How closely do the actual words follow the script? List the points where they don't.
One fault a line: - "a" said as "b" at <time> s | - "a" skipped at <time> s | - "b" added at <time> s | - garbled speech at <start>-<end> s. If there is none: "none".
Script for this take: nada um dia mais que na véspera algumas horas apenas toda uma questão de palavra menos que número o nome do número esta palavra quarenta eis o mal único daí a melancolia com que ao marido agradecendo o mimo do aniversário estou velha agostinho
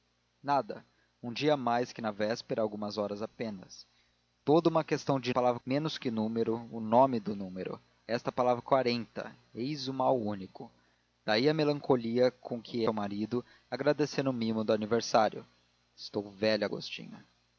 none